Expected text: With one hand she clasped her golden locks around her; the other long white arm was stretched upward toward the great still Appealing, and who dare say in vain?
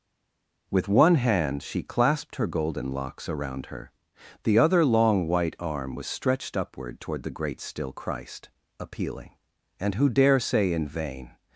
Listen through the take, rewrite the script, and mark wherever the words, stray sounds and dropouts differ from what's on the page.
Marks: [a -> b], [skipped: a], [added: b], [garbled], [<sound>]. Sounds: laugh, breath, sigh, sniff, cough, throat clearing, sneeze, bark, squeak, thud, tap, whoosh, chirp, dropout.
With one hand she clasped her golden locks around her; the other long white arm was stretched upward toward the great still [added: Christ] Appealing, and who dare say in vain?